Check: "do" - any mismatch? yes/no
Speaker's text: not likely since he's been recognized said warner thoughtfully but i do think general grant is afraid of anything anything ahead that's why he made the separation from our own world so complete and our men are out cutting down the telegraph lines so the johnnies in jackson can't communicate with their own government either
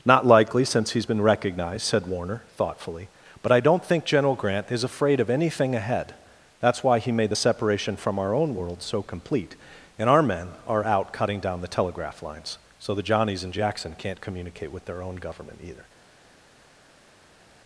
yes